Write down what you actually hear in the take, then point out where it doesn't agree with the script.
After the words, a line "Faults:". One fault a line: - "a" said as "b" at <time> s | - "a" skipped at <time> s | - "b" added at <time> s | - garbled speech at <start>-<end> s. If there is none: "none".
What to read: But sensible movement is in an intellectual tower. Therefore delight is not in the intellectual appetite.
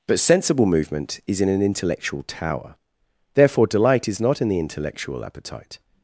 But sensible movement is in an intellectual tower. Therefore delight is not in the intellectual appetite.
Faults:
none